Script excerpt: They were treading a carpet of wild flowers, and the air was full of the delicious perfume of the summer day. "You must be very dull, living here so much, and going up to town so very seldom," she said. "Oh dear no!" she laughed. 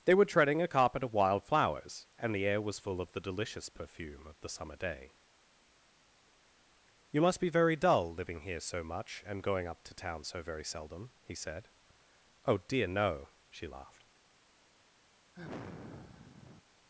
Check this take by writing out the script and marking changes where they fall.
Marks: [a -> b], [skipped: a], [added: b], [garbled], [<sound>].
They were treading a carpet of wild flowers, and the air was full of the delicious perfume of the summer day. "You must be very dull, living here so much, and going up to town so very seldom," [she -> he] said. "Oh dear no!" she laughed. [sigh]